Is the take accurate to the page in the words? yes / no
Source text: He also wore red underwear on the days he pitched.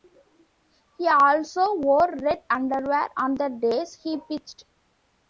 yes